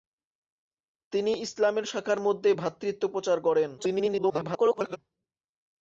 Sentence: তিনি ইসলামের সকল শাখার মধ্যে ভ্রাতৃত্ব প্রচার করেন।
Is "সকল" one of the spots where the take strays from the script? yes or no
yes